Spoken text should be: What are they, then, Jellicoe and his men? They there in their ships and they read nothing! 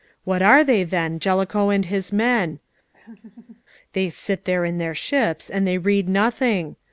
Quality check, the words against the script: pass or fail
fail